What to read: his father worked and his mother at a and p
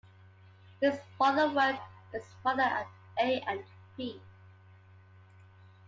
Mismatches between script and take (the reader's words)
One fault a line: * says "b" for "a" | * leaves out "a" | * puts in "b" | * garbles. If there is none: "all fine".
all fine